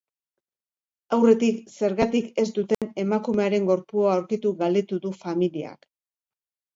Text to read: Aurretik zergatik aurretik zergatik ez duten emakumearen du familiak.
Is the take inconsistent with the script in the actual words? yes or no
yes